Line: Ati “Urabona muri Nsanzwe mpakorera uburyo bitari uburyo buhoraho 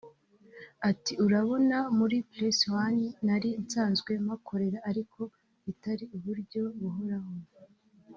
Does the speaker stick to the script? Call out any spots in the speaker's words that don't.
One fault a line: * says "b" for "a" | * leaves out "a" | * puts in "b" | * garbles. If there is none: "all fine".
* puts in "Press One nari"
* says "ariko" for "uburyo"